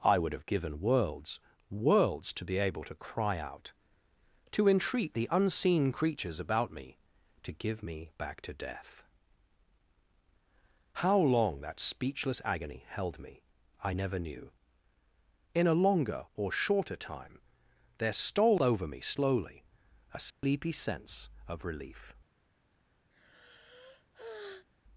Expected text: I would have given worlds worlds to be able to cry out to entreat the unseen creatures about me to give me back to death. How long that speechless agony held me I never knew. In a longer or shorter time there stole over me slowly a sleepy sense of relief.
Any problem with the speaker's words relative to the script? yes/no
no